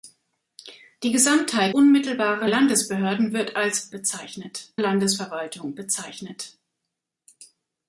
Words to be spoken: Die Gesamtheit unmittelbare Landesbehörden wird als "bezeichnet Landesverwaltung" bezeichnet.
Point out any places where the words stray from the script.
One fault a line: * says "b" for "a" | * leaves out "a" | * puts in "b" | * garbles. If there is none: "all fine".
all fine